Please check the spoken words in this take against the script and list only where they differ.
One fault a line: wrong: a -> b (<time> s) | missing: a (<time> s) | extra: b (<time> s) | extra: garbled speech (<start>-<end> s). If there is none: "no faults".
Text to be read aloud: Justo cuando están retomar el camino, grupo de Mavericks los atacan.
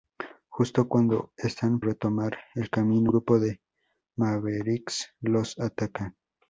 no faults